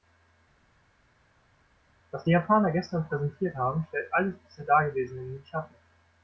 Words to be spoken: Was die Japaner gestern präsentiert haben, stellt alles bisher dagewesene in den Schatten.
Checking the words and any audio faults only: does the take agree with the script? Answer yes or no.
yes